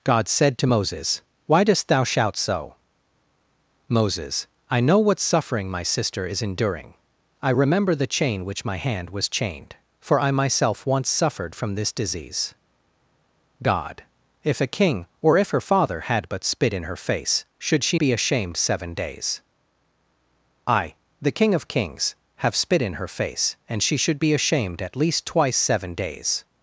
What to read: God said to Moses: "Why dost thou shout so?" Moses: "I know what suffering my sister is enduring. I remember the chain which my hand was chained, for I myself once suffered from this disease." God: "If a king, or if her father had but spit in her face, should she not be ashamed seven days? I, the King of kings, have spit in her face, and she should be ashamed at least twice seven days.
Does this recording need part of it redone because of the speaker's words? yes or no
yes